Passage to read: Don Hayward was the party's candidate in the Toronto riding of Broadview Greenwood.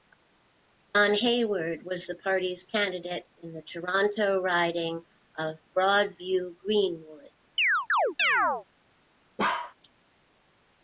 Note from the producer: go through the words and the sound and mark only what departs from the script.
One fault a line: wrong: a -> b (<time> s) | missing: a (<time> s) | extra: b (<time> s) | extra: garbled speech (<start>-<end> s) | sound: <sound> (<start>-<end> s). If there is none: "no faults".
sound: chirp (7.6-8.7 s)
sound: bark (9.4-9.7 s)